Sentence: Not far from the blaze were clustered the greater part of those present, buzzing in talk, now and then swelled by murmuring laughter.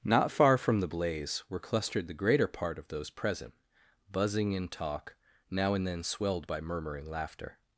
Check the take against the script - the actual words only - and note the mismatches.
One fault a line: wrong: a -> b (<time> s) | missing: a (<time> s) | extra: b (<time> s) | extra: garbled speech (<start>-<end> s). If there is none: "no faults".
no faults